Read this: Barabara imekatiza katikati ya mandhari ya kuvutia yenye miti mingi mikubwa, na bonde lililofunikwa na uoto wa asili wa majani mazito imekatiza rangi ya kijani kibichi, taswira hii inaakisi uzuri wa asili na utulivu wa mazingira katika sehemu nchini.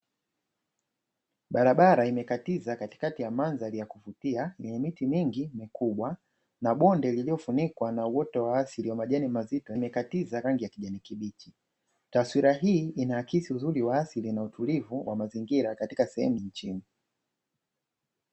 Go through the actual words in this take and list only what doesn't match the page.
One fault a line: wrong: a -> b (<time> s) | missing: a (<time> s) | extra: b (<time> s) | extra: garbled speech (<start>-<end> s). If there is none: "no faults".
no faults